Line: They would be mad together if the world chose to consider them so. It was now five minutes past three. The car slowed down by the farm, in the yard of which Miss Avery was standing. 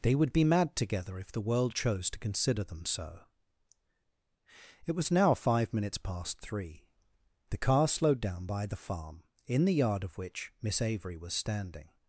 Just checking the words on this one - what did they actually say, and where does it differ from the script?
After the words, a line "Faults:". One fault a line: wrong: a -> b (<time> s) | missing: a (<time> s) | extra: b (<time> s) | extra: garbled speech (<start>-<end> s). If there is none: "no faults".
They would be mad together if the world chose to consider them so. It was now five minutes past three. The car slowed down by the farm, in the yard of which Miss Avery was standing.
Faults:
no faults